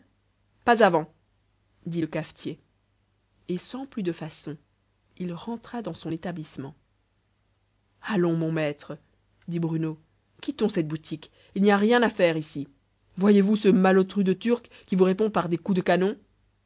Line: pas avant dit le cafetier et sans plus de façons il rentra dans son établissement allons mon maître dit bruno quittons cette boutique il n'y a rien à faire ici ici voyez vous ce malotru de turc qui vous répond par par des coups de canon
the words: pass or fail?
fail